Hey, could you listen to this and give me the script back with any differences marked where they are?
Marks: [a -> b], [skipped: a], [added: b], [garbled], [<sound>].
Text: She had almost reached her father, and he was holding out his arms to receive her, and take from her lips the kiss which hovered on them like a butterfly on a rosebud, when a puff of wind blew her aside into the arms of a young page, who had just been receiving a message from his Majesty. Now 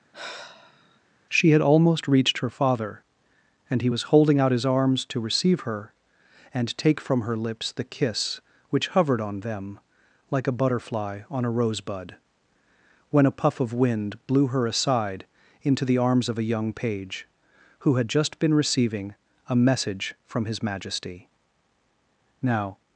[sigh] She had almost reached her father, and he was holding out his arms to receive her, and take from her lips the kiss which hovered on them like a butterfly on a rosebud, when a puff of wind blew her aside into the arms of a young page, who had just been receiving a message from his Majesty. Now